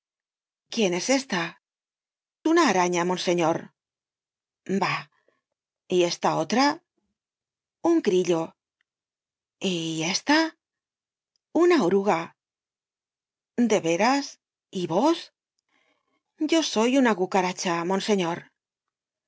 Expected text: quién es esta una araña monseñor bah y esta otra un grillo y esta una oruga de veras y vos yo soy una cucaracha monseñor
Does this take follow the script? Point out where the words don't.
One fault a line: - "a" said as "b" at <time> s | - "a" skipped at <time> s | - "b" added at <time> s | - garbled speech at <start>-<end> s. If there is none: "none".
none